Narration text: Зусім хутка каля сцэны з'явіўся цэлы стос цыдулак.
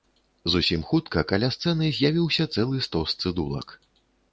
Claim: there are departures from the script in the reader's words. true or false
false